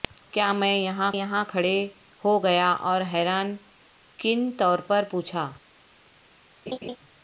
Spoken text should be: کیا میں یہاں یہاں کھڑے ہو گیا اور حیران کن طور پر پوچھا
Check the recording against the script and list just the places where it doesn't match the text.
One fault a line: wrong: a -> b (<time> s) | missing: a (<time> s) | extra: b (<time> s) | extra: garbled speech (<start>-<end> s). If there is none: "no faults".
no faults